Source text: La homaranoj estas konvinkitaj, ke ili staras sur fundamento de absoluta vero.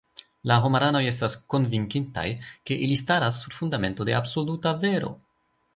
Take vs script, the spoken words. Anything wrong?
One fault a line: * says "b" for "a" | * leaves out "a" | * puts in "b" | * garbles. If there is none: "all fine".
all fine